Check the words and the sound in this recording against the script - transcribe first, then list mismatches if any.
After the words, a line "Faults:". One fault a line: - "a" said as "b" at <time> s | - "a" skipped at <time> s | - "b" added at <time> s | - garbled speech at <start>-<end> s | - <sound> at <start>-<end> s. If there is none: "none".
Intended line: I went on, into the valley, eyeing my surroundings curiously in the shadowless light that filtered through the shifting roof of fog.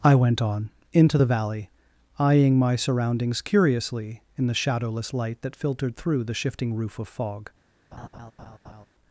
I went on, into the valley, eyeing my surroundings curiously in the shadowless light that filtered through the shifting roof of fog.
Faults:
- laugh at 7.9-8.9 s